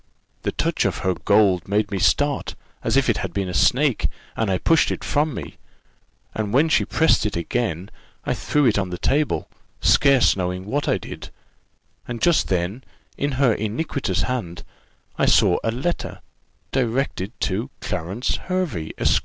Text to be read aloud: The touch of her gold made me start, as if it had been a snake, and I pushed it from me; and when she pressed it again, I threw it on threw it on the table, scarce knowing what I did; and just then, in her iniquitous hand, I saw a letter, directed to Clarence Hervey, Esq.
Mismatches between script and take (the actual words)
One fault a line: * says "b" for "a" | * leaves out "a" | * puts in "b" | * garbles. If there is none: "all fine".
* leaves out "threw it on"